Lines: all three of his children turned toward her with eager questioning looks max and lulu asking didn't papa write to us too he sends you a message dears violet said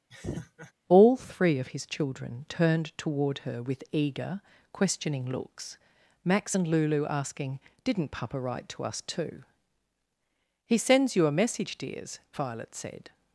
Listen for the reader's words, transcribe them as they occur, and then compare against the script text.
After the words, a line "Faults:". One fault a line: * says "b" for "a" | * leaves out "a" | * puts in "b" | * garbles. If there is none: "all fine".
all three of his children turned toward her with eager questioning looks max and lulu asking didn't papa write to us too he sends you a message dears violet said
Faults:
all fine